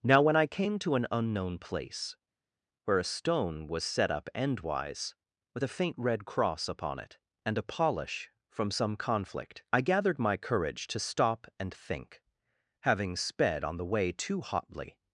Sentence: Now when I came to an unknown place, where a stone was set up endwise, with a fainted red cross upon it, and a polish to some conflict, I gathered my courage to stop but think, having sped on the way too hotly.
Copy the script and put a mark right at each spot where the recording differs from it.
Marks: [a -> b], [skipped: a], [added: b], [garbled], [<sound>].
Now when I came to an unknown place, where a stone was set up endwise, with a [fainted -> faint] red cross upon it, and a polish [to -> from] some conflict, I gathered my courage to stop [but -> and] think, having sped on the way too hotly.